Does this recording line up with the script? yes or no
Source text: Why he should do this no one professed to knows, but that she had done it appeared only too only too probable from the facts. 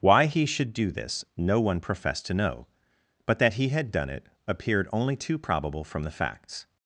no